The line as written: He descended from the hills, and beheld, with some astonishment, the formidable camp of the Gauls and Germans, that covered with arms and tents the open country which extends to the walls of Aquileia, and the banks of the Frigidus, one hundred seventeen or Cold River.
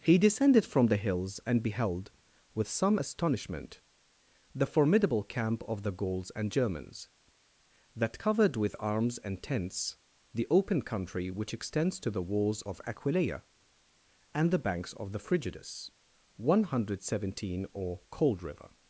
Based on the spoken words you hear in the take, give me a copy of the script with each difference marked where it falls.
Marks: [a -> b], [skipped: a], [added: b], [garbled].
He descended from the hills, and beheld, with some astonishment, the formidable camp of the Gauls and Germans, that covered with arms and tents the open country which extends to the walls of Aquileia, and the banks of the Frigidus, one hundred seventeen or Cold River.